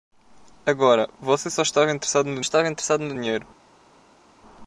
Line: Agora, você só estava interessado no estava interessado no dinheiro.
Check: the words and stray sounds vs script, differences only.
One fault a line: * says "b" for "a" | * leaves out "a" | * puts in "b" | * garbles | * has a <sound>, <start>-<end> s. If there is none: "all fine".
all fine